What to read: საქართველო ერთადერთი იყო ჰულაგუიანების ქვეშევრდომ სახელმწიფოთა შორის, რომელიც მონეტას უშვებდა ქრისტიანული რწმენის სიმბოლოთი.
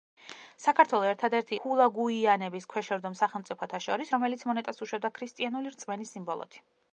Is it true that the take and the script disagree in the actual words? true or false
true